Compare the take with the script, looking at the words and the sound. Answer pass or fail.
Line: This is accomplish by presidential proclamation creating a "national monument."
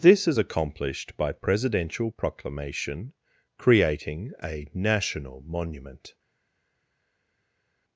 fail